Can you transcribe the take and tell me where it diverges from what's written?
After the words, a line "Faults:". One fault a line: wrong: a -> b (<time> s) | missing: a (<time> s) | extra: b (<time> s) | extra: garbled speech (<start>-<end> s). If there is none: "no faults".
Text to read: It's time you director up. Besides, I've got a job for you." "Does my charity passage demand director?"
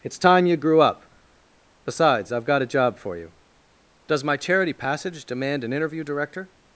It's time you grew up. Besides, I've got a job for you." "Does my charity passage demand an interview, director?"
Faults:
wrong: director -> grew (0.6 s)
extra: an interview (5.6 s)